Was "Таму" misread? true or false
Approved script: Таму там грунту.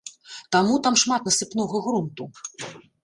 false